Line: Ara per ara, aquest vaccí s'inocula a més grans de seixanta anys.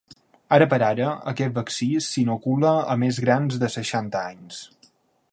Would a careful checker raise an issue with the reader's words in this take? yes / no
no